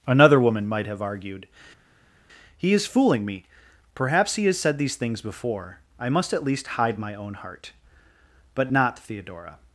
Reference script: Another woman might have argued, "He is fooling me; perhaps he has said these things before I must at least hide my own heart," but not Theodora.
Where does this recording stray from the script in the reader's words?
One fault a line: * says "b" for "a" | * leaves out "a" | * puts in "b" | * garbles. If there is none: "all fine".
all fine